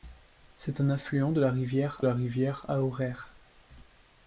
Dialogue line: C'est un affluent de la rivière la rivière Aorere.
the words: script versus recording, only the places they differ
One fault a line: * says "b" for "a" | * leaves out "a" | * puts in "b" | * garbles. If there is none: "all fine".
all fine